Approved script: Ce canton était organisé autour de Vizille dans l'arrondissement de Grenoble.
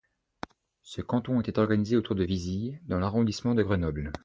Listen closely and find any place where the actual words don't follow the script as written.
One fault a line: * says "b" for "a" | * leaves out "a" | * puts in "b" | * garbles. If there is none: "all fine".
all fine